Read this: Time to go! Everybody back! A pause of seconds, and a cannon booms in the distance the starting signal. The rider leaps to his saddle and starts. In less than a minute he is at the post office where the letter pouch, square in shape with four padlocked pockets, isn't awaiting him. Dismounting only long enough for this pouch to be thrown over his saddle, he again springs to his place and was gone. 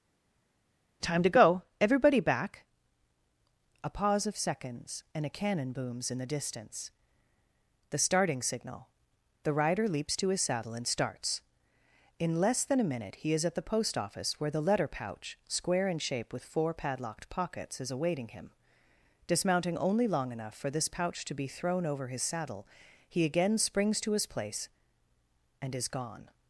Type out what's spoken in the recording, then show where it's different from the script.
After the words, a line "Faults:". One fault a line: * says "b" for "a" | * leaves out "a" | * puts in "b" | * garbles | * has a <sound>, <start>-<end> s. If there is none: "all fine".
Time to go! Everybody back! A pause of seconds, and a cannon booms in the distance the starting signal. The rider leaps to his saddle and starts. In less than a minute he is at the post office where the letter pouch, square in shape with four padlocked pockets, is awaiting him. Dismounting only long enough for this pouch to be thrown over his saddle, he again springs to his place and is gone.
Faults:
* says "is" for "isn't"
* says "is" for "was"